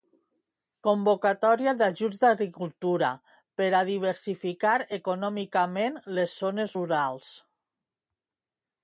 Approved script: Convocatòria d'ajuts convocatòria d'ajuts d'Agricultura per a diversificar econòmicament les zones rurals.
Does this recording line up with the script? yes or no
no